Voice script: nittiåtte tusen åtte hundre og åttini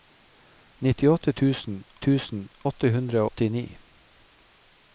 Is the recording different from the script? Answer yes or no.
yes